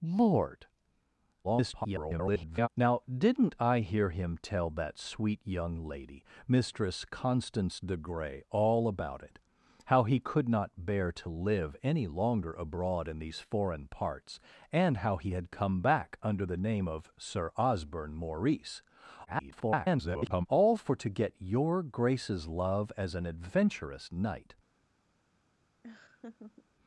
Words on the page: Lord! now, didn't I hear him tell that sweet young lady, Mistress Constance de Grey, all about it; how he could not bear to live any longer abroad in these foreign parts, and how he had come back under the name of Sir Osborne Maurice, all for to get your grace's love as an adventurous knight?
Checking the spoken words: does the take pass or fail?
fail